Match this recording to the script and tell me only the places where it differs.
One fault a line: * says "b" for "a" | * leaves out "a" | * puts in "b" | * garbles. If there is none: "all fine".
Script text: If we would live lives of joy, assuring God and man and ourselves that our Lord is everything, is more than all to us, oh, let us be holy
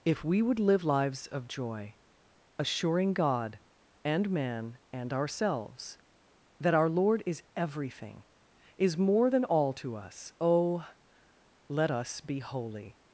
all fine